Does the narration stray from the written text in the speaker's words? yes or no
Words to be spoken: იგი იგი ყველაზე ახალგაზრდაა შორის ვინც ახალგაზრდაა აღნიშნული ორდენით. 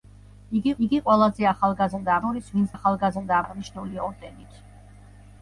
no